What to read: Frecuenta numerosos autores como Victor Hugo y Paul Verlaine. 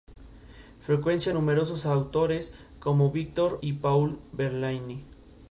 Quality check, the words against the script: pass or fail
fail